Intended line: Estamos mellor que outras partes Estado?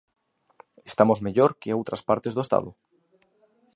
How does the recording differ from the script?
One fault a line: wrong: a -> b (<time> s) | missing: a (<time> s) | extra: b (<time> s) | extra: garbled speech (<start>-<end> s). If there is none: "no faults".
extra: do (2.3 s)